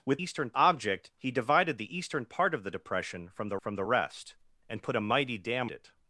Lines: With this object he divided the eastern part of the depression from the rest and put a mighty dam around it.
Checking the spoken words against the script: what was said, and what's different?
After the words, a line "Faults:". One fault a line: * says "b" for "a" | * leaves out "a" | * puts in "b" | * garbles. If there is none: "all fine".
With eastern object he divided the eastern part of the depression from the from the rest and put a mighty dam it.
Faults:
* says "eastern" for "this"
* puts in "from the"
* leaves out "around"